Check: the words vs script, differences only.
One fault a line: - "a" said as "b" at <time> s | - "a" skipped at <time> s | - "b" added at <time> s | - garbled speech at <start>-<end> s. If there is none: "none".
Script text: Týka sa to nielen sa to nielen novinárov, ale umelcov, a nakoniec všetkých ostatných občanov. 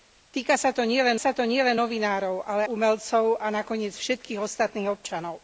none